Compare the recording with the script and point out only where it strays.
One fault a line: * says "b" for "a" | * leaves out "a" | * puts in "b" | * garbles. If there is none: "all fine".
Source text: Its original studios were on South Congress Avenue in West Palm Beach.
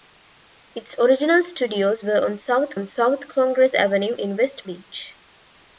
* puts in "on South"
* leaves out "Palm"